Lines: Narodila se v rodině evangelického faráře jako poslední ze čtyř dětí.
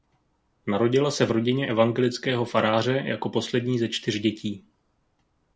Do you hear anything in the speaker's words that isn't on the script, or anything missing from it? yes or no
no